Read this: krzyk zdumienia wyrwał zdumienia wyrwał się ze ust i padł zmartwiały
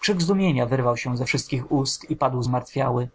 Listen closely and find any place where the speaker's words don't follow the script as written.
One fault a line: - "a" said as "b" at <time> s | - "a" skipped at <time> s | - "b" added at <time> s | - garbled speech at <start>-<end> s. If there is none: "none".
- "zdumienia wyrwał" skipped at 1.0 s
- "wszystkich" added at 1.2 s